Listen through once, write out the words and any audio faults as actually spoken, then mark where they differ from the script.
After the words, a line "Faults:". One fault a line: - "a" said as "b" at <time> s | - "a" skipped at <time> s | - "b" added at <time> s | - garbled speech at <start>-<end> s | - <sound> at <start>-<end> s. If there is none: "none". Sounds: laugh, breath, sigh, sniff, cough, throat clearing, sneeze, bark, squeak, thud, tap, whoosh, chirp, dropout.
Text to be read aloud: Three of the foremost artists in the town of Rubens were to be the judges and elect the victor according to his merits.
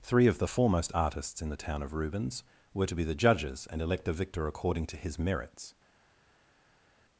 Three of the foremost artists in the town of Rubens were to be the judges and elect a victor according to his merits.
Faults:
- "the" said as "a" at 4.1 s